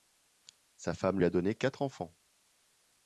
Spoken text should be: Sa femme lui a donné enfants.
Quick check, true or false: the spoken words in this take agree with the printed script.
false